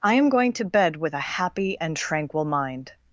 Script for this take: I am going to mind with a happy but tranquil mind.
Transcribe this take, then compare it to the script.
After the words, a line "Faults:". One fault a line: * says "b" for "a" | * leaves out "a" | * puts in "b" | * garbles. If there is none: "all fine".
I am going to bed with a happy and tranquil mind.
Faults:
* says "bed" for "mind"
* says "and" for "but"